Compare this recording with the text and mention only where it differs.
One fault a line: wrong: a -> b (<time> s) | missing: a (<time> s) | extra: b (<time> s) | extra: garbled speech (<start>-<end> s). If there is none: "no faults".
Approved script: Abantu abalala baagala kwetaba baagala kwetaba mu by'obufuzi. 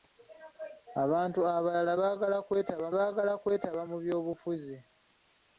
no faults